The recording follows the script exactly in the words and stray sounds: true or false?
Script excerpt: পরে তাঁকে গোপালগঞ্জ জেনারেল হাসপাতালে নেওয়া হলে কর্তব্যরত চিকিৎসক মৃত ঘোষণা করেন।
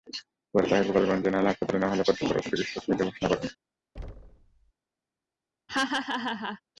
false